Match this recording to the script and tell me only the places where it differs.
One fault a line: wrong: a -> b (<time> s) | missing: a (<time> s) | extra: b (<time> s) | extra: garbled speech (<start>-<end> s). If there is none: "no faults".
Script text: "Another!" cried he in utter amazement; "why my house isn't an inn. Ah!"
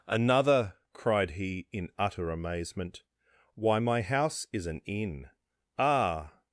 wrong: isn't -> is (4.5 s)